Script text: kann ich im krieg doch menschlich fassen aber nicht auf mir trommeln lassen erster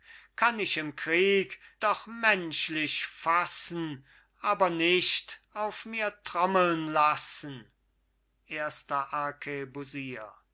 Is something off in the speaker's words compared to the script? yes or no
no